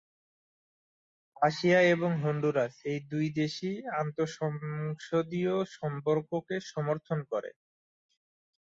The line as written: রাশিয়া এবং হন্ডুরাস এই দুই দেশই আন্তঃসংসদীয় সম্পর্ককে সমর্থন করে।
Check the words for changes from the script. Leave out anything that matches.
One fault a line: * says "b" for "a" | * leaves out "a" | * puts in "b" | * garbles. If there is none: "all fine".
all fine